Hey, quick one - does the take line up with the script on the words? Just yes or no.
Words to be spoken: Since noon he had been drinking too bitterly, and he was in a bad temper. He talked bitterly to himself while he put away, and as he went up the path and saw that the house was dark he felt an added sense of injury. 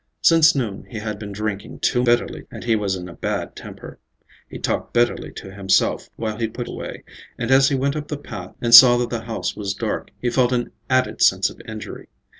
yes